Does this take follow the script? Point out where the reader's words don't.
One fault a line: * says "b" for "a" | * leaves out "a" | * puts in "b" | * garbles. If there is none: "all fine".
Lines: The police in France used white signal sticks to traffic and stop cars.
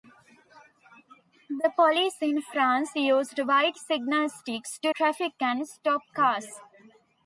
all fine